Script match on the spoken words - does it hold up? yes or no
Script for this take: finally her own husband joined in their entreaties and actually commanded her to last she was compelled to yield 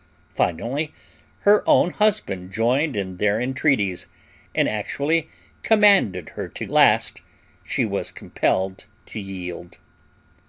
yes